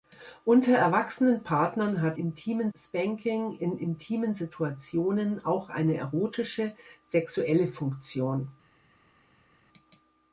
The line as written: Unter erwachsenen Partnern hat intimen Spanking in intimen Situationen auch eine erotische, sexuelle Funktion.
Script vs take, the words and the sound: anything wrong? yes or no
no